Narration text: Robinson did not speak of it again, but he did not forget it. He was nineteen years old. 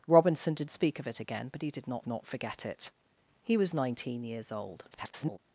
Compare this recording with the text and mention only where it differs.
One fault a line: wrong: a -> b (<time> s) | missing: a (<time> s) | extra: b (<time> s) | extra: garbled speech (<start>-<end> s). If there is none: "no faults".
missing: not (0.7 s)
extra: not (2.1 s)
extra: garbled speech (4.9-5.4 s)